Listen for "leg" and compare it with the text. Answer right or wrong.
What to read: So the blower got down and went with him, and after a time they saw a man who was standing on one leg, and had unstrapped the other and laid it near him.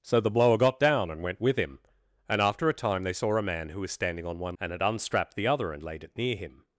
wrong